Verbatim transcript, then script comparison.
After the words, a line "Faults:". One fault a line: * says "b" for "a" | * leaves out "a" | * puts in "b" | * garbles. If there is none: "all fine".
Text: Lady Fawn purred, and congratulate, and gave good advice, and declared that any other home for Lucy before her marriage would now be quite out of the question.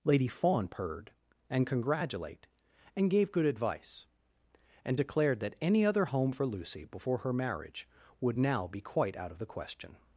Lady Fawn purred, and congratulate, and gave good advice, and declared that any other home for Lucy before her marriage would now be quite out of the question.
Faults:
all fine